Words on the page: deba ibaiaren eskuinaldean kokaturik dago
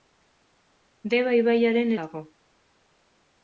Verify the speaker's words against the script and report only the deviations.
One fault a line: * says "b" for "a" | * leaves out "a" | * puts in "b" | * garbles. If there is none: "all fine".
* leaves out "eskuinaldean kokaturik"